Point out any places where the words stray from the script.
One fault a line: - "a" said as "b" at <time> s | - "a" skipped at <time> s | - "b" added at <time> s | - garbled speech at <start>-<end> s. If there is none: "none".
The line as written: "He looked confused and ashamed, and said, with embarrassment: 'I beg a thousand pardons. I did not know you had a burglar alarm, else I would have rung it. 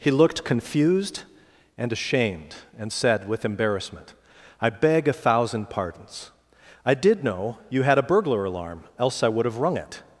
- "not" skipped at 7.2 s